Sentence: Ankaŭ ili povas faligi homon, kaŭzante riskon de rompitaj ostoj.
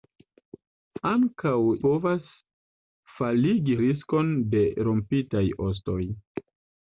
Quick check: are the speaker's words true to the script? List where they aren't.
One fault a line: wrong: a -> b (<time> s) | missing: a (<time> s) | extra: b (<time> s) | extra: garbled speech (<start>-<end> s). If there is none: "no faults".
missing: ili (1.5 s)
missing: homon kaŭzante (3.8 s)